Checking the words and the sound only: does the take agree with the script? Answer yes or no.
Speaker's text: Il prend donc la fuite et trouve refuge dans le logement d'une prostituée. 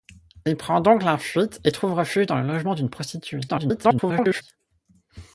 no